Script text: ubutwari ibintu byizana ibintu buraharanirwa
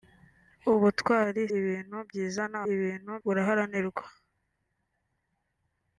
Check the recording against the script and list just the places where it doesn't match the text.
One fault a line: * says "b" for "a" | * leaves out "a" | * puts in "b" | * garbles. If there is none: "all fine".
all fine